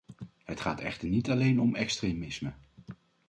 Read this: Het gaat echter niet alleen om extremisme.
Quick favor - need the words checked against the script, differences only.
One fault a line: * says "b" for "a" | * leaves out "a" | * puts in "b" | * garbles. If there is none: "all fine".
all fine